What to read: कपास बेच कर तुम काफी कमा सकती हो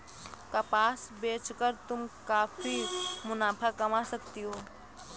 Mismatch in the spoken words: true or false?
true